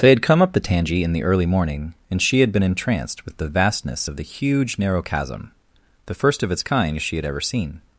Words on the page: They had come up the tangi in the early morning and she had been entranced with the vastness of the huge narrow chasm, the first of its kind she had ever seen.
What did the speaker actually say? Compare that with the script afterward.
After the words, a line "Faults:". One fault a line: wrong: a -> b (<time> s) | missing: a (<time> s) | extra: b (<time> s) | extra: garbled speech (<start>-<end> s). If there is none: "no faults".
They had come up the tangi in the early morning and she had been entranced with the vastness of the huge narrow chasm, the first of its kind she had ever seen.
Faults:
no faults